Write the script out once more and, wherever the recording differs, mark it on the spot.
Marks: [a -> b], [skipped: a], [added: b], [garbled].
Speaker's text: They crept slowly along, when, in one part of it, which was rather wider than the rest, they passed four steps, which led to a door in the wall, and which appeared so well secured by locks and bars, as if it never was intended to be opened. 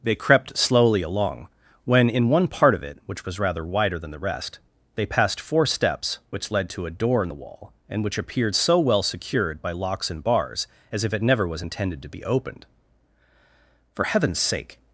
They crept slowly along, when, in one part of it, which was rather wider than the rest, they passed four steps, which led to a door in the wall, and which appeared so well secured by locks and bars, as if it never was intended to be opened. [added: For heaven's sake]